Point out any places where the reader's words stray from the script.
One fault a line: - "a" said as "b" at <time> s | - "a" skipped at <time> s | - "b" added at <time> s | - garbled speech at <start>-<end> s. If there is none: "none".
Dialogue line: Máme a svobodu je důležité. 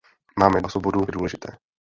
none